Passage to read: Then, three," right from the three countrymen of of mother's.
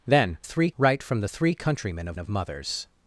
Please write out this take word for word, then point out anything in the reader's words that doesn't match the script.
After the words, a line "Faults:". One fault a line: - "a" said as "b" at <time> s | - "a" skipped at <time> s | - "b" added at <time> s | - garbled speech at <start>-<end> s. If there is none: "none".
Then, three," right from the three countrymen of of mother's.
Faults:
none